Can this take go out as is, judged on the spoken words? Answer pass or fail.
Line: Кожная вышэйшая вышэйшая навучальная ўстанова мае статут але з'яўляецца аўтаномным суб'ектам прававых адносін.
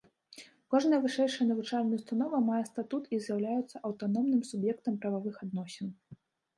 fail